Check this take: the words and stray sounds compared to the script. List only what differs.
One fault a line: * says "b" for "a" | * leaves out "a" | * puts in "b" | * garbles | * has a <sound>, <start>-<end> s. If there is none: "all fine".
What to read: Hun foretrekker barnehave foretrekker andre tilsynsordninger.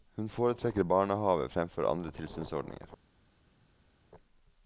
* says "fremfor" for "foretrekker"